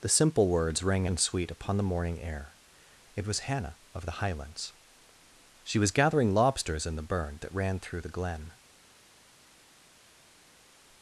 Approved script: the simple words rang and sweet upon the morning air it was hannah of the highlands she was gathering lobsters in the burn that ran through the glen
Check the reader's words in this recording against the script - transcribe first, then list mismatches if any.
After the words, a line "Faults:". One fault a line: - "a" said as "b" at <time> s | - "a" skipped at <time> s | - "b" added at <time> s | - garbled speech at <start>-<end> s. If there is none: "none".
the simple words rang and sweet upon the morning air it was hannah of the highlands she was gathering lobsters in the burn that ran through the glen
Faults:
none